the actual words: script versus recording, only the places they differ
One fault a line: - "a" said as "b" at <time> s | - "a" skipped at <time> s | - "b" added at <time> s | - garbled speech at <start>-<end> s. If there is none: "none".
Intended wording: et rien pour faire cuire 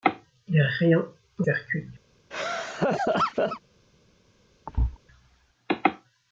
none